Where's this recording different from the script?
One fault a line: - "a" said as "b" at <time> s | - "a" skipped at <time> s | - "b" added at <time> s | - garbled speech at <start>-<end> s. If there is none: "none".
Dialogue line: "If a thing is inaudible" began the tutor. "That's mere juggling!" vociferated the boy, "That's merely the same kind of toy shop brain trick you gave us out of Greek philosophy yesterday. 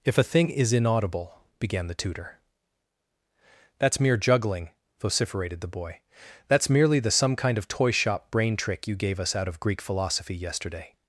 - "same" said as "some" at 7.1 s